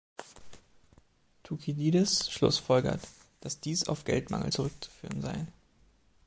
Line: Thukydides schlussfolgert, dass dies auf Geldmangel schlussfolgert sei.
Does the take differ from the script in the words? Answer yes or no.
yes